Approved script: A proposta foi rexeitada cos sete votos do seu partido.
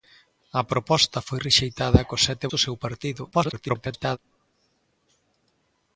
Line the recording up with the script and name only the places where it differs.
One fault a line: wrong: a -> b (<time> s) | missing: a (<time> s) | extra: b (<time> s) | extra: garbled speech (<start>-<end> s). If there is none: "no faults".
missing: votos (2.5 s)
extra: garbled speech (3.3-4.2 s)